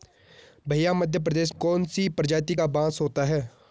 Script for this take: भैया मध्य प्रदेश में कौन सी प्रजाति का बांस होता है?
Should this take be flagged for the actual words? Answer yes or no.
yes